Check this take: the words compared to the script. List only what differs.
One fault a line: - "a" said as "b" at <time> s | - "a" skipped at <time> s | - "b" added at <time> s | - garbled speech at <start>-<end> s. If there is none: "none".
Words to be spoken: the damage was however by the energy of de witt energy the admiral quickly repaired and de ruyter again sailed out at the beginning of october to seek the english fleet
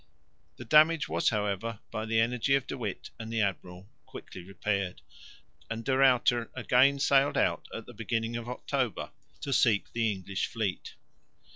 - "energy" said as "and" at 3.2 s